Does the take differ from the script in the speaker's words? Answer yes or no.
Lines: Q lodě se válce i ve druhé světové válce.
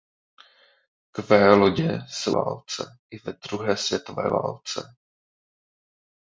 no